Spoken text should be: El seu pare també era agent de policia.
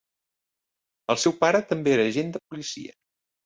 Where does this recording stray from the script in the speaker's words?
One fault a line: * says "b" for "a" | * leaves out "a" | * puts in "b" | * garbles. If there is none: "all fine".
all fine